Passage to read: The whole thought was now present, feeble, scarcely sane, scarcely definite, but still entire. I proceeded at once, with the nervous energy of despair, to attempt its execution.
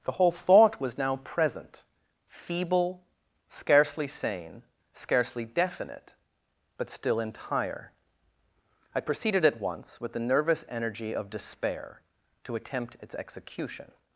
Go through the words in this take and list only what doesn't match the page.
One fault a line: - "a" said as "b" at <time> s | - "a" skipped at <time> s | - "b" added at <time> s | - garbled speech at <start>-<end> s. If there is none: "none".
none